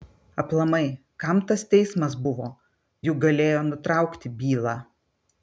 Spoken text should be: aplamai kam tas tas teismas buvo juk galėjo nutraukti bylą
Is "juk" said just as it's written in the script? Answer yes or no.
yes